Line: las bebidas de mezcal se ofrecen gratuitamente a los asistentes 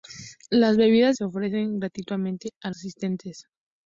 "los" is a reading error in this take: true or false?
true